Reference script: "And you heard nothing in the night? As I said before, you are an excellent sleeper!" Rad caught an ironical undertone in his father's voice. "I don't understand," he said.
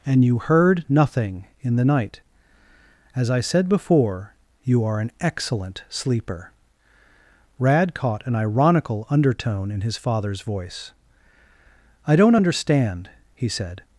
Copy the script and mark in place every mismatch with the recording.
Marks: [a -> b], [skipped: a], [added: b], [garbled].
"And you heard nothing in the night? As I said before, you are an excellent sleeper!" Rad caught an ironical undertone in his father's voice. "I don't understand," he said.